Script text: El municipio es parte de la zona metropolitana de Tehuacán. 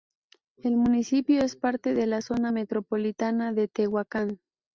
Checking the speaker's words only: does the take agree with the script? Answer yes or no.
yes